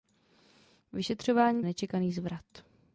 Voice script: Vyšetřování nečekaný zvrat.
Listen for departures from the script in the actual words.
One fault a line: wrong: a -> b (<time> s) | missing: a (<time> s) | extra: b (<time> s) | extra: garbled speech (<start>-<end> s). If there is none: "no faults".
no faults